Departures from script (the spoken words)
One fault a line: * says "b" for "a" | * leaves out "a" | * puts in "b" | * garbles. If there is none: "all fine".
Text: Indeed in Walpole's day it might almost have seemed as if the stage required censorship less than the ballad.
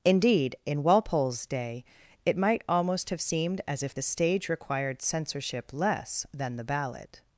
all fine